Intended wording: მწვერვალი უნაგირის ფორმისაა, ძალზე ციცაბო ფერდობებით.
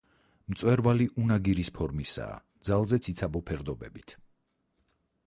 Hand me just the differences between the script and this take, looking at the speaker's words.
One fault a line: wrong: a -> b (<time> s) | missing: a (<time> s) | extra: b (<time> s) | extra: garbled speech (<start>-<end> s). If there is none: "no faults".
no faults